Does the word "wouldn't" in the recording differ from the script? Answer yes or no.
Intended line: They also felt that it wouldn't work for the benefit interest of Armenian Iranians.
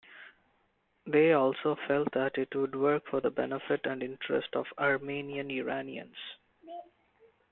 yes